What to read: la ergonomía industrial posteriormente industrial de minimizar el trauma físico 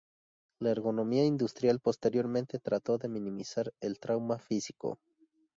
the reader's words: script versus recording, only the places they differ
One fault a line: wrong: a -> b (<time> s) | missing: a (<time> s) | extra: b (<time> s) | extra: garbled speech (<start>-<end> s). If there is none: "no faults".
wrong: industrial -> trató (2.6 s)